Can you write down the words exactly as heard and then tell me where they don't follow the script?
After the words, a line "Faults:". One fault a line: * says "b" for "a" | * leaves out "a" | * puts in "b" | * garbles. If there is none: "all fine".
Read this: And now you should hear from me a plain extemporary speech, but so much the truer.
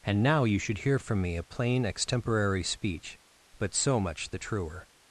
And now you should hear from me a plain extemporary speech, but so much the truer.
Faults:
all fine